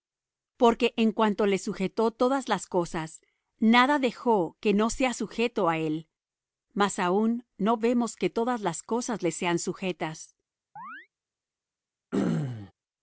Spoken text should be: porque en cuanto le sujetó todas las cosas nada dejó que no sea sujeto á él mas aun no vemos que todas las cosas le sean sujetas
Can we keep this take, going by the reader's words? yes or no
yes